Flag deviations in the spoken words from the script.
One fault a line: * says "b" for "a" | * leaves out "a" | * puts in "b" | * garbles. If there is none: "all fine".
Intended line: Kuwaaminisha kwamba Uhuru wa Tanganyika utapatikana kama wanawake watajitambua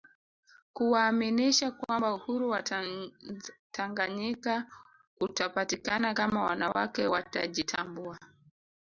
all fine